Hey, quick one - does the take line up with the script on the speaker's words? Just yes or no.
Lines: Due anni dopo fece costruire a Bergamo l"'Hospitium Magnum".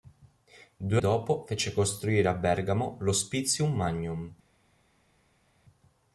no